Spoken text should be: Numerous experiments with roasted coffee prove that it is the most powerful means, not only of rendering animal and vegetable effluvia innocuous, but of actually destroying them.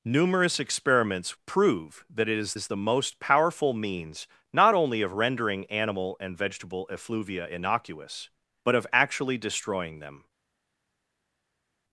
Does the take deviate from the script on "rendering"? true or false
false